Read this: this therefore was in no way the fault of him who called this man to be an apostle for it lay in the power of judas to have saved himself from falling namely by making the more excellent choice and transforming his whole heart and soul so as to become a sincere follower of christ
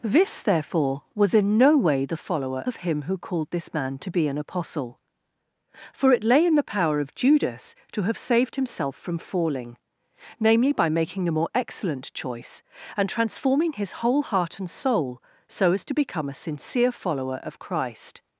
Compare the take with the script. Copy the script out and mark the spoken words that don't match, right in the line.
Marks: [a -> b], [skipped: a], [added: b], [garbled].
this therefore was in no way the [fault -> follower] of him who called this man to be an apostle for it lay in the power of judas to have saved himself from falling namely by making the more excellent choice and transforming his whole heart and soul so as to become a sincere follower of christ